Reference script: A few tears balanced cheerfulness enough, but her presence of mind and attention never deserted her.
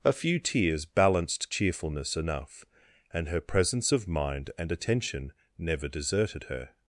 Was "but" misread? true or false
true